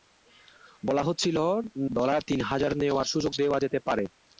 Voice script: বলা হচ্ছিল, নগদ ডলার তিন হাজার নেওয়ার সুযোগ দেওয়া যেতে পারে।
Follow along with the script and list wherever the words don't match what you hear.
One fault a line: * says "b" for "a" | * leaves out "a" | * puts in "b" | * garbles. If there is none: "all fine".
* leaves out "নগদ"